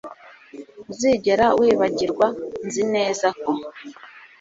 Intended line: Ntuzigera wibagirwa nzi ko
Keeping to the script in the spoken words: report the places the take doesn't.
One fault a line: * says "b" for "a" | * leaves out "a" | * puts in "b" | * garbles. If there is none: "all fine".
* puts in "neza"